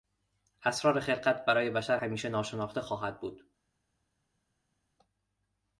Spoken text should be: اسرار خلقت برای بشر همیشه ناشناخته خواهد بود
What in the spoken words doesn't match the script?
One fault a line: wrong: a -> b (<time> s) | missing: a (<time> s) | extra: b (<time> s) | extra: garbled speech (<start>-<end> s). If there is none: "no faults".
no faults